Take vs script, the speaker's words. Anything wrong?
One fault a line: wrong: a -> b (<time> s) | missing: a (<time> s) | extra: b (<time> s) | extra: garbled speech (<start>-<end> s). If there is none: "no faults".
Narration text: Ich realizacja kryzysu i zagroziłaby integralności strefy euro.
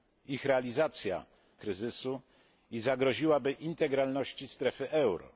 no faults